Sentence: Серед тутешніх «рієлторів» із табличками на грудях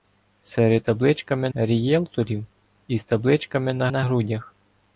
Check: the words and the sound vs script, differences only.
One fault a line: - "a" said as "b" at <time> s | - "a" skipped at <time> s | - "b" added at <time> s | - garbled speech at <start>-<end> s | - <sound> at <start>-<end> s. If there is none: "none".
- "тутешніх" said as "табличками" at 0.8 s
- "на" added at 3.9 s